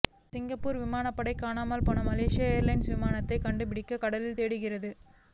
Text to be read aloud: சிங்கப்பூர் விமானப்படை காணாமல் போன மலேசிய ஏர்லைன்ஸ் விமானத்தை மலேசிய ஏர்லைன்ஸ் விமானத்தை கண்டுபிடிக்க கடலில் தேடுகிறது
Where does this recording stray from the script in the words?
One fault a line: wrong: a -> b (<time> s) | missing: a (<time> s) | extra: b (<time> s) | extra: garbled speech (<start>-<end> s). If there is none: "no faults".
missing: மலேசிய ஏர்லைன்ஸ் விமானத்தை (3.4 s)